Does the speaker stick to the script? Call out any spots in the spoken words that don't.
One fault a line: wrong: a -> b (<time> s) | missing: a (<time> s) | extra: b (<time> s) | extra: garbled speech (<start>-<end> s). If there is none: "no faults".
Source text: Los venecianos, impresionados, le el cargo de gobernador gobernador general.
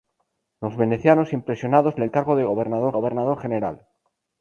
no faults